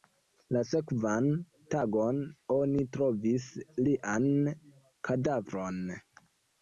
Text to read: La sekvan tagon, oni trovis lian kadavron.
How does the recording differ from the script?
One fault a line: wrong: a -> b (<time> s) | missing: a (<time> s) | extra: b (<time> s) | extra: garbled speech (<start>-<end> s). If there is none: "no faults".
no faults